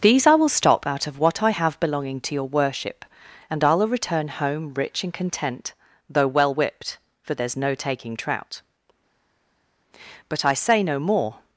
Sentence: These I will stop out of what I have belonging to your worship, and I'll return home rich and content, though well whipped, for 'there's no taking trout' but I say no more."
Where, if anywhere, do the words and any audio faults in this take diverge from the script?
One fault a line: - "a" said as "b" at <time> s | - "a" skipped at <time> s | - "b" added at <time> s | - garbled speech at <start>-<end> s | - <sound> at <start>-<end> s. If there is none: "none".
none